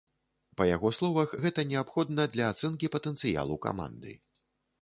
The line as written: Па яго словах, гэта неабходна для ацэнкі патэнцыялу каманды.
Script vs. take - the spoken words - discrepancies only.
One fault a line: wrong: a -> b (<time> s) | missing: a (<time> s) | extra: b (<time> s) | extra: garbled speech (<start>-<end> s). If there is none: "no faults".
no faults